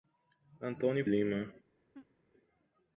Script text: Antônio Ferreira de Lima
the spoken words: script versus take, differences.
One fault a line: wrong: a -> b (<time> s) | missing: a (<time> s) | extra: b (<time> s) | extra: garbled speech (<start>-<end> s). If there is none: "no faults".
missing: Ferreira de (1.1 s)